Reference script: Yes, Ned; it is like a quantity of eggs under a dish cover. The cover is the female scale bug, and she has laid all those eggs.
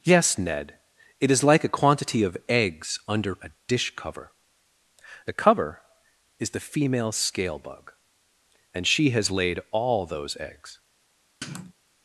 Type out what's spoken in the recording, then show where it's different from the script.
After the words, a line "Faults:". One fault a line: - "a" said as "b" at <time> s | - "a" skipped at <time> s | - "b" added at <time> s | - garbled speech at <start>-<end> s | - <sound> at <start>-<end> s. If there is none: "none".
Yes, Ned; it is like a quantity of eggs under a dish cover. The cover is the female scale bug, and she has laid all those eggs.
Faults:
- sniff at 11.4-11.7 s